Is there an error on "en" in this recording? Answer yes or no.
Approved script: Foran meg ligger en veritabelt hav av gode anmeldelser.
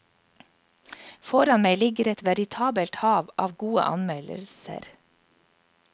yes